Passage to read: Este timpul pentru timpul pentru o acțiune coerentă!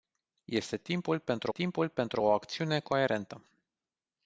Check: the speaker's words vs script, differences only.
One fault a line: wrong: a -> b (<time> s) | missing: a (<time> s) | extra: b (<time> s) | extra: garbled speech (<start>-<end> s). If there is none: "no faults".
no faults